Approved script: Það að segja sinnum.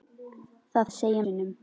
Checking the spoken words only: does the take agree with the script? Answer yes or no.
yes